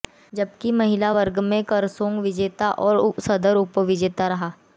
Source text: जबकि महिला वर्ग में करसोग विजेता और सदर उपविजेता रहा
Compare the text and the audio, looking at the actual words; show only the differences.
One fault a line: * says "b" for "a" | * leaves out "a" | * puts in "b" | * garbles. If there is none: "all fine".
all fine